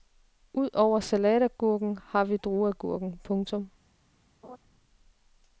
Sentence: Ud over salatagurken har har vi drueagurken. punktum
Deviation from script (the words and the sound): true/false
true